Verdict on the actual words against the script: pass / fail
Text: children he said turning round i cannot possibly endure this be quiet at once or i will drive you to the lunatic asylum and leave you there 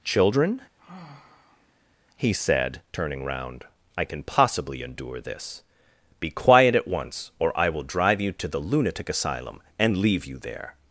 fail